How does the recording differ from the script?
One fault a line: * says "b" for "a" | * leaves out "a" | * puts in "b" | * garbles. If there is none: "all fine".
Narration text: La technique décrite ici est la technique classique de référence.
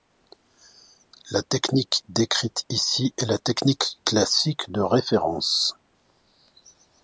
all fine